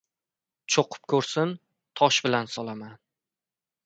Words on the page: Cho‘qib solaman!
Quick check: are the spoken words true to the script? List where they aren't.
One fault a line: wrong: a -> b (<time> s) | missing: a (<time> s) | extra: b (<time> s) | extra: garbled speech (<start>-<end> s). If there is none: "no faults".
extra: ko‘rsin tosh bilan (1.1 s)